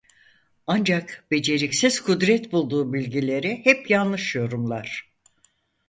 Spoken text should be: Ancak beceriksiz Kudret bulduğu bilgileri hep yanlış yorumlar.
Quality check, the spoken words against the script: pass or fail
pass